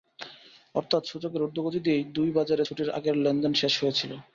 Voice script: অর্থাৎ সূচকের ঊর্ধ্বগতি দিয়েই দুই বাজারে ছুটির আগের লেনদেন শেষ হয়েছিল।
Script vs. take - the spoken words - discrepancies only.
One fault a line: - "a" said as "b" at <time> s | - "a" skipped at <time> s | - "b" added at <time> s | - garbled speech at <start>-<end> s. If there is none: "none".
none